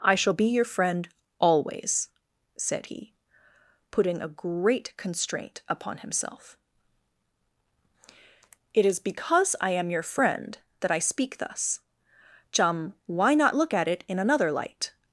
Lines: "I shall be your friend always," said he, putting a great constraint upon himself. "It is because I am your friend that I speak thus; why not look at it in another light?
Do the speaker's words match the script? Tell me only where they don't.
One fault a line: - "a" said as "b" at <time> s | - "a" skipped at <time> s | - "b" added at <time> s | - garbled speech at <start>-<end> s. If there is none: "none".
- "chum" added at 12.5 s